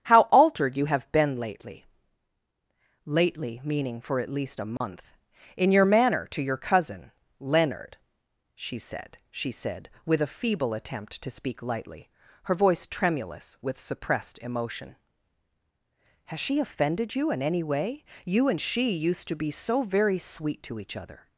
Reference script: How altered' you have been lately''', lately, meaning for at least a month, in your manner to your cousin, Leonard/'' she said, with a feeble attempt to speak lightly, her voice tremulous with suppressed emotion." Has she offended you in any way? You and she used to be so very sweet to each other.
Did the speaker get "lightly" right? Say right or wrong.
right